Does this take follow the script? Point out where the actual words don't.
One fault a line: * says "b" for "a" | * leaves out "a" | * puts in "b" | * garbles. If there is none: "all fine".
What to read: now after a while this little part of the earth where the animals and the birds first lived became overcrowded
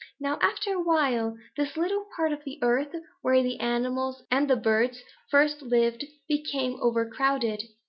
all fine